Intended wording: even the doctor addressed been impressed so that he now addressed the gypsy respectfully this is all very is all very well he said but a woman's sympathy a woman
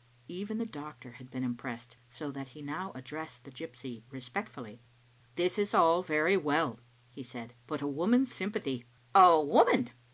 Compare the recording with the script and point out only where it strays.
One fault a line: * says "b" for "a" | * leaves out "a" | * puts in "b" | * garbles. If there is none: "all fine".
* says "had" for "addressed"
* leaves out "is all very"